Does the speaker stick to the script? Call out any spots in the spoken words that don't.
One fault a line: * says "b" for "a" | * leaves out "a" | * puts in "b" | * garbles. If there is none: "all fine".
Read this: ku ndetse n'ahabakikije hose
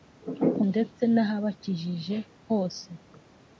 all fine